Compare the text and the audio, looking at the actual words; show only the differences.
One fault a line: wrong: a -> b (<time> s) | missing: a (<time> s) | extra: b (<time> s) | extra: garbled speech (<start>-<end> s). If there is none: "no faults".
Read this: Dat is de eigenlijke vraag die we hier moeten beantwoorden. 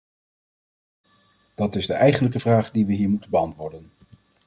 no faults